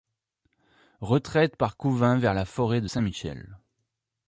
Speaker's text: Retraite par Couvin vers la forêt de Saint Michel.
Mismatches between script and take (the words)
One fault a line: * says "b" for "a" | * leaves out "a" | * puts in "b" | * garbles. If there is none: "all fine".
all fine